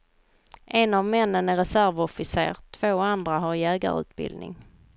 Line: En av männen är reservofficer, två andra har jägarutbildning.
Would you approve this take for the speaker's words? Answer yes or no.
yes